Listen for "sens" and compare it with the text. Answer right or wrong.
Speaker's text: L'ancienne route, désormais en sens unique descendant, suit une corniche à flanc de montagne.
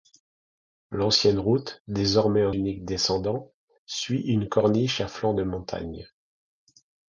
wrong